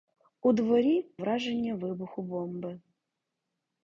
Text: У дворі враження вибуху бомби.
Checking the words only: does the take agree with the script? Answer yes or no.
yes